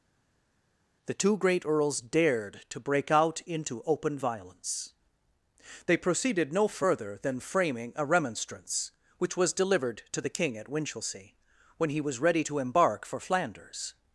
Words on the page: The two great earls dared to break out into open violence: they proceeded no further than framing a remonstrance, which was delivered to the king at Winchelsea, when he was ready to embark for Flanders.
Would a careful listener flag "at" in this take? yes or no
no